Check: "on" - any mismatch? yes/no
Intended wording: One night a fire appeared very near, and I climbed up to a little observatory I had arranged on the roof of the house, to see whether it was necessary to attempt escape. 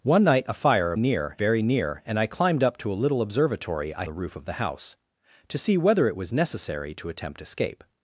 yes